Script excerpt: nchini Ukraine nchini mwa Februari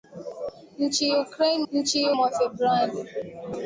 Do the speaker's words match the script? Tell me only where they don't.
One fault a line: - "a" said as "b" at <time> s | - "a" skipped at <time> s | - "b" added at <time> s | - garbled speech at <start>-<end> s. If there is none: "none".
none